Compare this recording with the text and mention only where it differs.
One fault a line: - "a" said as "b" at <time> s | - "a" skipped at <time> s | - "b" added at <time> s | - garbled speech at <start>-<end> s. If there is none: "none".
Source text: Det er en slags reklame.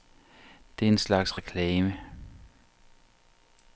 none